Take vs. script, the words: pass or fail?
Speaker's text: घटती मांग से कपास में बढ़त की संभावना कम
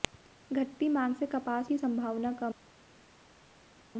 fail